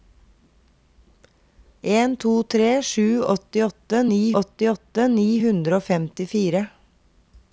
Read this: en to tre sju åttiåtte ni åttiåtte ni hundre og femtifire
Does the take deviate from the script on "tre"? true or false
false